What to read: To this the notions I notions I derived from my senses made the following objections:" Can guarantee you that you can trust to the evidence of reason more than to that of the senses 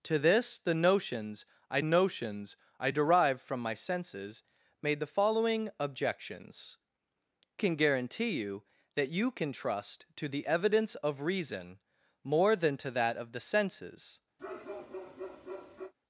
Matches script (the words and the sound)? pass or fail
fail